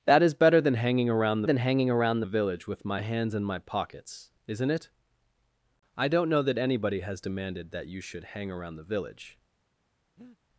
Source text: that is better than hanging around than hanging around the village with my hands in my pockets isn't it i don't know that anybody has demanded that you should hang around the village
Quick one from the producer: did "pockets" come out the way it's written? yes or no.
yes